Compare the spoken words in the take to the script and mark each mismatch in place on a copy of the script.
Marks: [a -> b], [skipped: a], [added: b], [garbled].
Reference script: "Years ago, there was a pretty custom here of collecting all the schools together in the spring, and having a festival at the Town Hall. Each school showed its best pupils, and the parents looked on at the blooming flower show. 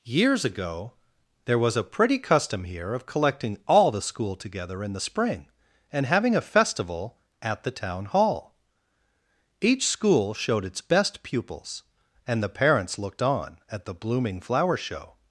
"Years ago, there was a pretty custom here of collecting all the [schools -> school] together in the spring, and having a festival at the Town Hall. Each school showed its best pupils, and the parents looked on at the blooming flower show.